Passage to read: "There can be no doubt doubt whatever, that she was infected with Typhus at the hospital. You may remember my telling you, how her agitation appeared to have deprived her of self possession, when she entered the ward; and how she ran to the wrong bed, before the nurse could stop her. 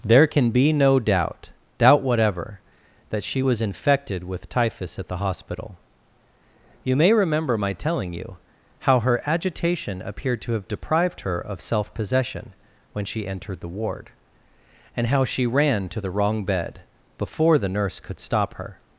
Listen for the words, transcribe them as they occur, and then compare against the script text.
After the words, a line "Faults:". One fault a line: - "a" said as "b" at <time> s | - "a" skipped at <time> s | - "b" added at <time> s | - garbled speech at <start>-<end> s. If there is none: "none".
"There can be no doubt doubt whatever, that she was infected with Typhus at the hospital. You may remember my telling you, how her agitation appeared to have deprived her of self possession, when she entered the ward; and how she ran to the wrong bed, before the nurse could stop her.
Faults:
none